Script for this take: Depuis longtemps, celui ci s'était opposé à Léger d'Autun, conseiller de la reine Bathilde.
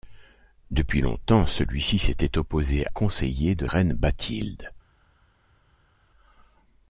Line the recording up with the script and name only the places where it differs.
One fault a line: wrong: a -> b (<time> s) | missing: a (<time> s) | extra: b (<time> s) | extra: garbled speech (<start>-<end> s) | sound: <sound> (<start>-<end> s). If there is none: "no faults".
missing: à Léger d'Autun (2.9 s)
missing: la (3.7 s)